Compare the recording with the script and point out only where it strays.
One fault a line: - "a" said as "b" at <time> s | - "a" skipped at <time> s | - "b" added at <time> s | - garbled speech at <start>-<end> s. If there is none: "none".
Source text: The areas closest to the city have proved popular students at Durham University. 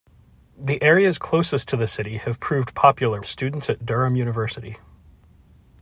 none